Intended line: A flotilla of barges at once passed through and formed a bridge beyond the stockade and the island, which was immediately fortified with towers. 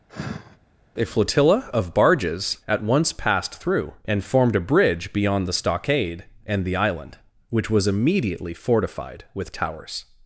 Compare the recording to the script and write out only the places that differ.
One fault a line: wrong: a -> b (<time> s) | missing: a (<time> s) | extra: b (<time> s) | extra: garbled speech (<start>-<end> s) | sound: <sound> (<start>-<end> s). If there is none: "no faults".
sound: sigh (0.1-0.6 s)